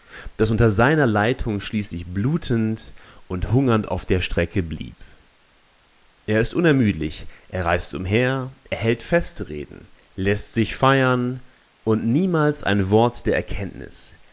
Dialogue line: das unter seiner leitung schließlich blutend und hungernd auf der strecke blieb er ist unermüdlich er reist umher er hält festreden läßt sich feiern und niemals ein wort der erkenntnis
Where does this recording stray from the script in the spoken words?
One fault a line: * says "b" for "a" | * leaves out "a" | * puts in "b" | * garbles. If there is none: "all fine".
all fine